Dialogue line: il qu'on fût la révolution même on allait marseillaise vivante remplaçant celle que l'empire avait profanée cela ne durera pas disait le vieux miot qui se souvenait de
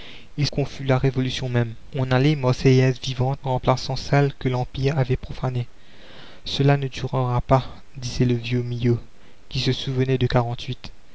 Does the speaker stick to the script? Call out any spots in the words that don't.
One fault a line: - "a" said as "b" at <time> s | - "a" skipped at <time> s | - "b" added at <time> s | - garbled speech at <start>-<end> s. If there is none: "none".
none